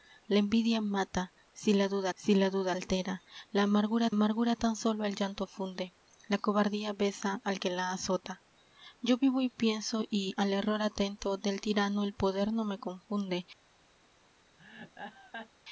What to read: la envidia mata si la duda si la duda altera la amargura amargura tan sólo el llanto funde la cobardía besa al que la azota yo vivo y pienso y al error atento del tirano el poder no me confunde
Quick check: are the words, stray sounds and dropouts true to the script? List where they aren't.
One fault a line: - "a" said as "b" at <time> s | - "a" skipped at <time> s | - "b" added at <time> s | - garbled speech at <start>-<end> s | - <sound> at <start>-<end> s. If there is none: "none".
- laugh at 14.6-15.5 s